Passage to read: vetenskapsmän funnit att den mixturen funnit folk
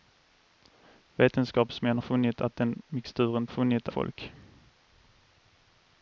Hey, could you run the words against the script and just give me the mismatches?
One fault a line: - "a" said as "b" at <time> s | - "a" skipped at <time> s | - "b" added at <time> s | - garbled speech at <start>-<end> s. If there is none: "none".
none